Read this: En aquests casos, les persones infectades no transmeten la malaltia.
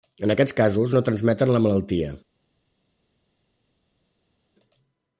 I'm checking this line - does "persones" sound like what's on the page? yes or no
no